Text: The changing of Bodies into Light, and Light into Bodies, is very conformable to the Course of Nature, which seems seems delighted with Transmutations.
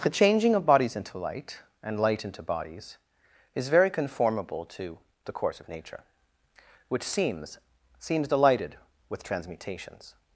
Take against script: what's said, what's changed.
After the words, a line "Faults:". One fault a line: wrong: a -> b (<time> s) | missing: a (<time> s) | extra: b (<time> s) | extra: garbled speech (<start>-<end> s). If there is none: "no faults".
The changing of Bodies into Light, and Light into Bodies, is very conformable to the Course of Nature, which seems seems delighted with Transmutations.
Faults:
no faults